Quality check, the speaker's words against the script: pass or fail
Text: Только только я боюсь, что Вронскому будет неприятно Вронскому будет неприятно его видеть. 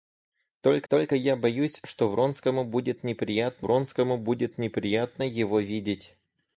pass